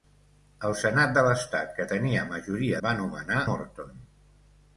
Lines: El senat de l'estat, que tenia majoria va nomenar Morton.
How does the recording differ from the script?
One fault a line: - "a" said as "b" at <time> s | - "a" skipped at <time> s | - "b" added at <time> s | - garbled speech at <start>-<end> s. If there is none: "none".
none